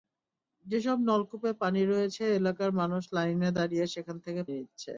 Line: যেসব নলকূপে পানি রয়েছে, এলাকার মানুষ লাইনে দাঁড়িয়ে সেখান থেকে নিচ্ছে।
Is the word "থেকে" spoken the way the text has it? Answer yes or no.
yes